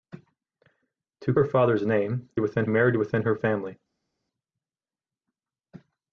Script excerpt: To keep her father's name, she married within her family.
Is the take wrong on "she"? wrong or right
wrong